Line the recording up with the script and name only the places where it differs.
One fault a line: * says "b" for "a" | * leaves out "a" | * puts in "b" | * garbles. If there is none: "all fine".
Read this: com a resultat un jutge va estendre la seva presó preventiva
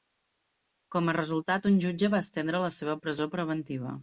all fine